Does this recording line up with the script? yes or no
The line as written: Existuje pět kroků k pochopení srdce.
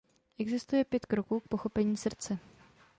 yes